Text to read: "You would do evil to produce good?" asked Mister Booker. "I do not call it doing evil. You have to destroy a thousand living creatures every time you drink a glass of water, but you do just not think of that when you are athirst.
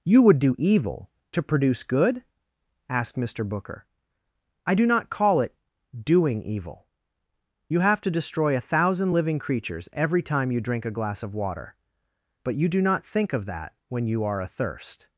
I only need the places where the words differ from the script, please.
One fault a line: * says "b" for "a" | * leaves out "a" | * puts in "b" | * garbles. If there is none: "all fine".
* leaves out "just"